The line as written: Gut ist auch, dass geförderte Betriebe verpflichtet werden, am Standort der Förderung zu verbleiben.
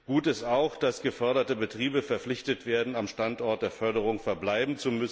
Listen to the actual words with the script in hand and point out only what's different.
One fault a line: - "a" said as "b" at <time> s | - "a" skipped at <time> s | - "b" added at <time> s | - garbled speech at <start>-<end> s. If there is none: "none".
none